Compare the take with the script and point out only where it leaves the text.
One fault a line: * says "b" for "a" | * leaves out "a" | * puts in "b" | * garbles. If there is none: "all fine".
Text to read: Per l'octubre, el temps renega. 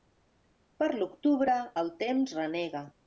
all fine